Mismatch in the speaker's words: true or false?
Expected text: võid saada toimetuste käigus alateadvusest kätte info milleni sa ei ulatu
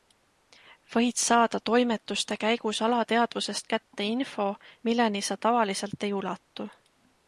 true